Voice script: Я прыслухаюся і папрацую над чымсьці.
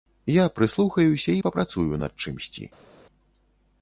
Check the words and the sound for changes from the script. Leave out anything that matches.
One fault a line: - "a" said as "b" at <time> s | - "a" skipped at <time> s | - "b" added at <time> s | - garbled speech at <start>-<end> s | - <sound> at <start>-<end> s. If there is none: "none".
none